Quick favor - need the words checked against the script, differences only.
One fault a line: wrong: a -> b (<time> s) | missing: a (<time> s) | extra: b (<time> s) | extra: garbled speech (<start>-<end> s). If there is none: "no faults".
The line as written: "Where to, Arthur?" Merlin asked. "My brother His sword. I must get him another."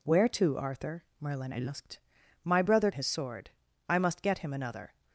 no faults